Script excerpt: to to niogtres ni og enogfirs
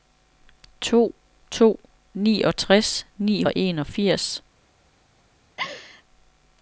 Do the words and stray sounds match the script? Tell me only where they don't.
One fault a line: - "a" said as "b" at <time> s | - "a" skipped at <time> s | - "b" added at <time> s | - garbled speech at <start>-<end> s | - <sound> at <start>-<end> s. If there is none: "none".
- laugh at 5.6-6.0 s